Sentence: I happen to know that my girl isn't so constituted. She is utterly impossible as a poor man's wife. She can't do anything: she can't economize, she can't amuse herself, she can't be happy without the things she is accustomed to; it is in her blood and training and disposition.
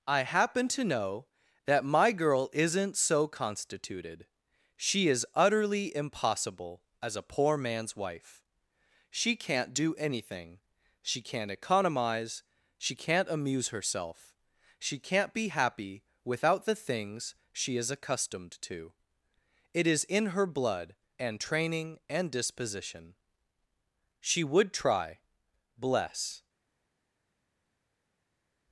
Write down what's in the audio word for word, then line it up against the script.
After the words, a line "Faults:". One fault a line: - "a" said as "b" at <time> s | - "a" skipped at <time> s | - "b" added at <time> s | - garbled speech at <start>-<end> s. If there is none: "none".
I happen to know that my girl isn't so constituted. She is utterly impossible as a poor man's wife. She can't do anything: she can't economize, she can't amuse herself, she can't be happy without the things she is accustomed to; it is in her blood and training and disposition. She would try, bless
Faults:
- "She would try bless" added at 24.2 s